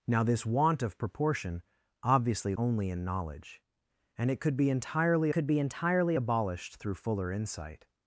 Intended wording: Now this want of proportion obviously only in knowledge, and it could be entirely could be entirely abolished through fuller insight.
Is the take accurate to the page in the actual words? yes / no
yes